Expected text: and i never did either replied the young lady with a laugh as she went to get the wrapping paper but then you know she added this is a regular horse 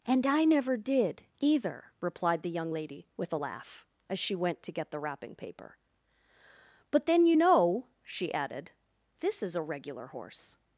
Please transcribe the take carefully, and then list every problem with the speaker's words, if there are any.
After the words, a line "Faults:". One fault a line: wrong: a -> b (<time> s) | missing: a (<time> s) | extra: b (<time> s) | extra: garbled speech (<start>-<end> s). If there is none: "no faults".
and i never did either replied the young lady with a laugh as she went to get the wrapping paper but then you know she added this is a regular horse
Faults:
no faults